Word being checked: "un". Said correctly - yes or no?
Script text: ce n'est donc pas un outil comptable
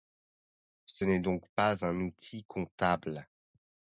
yes